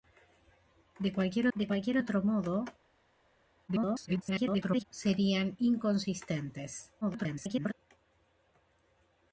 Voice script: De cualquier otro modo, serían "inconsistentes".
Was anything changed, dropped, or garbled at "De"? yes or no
no